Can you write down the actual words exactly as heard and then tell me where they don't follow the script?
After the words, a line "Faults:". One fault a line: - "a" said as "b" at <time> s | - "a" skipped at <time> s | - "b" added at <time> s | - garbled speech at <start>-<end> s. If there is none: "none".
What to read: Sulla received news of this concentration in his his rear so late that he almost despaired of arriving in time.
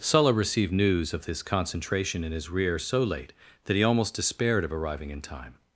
Sulla received news of this concentration in his rear so late that he almost despaired of arriving in time.
Faults:
- "his" skipped at 2.5 s